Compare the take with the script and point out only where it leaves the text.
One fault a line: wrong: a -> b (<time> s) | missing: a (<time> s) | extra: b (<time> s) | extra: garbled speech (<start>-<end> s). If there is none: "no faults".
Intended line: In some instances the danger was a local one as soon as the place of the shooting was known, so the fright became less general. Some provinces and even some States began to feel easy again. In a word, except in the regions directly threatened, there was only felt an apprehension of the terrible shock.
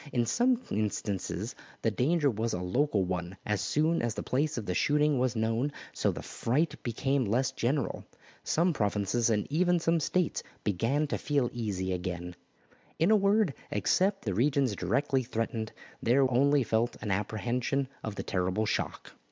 missing: in (14.2 s)
missing: was (16.3 s)